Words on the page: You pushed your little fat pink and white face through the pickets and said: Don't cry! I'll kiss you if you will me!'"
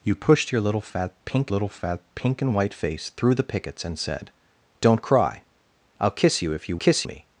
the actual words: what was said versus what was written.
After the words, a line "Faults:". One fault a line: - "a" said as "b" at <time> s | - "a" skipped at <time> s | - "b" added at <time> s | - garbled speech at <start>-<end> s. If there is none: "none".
You pushed your little fat pink little fat pink and white face through the pickets and said: Don't cry! I'll kiss you if you kiss me!'"
Faults:
- "little fat pink" added at 1.5 s
- "will" said as "kiss" at 6.7 s